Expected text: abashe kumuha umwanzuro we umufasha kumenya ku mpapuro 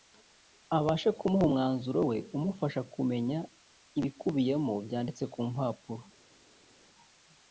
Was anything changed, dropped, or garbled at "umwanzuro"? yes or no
no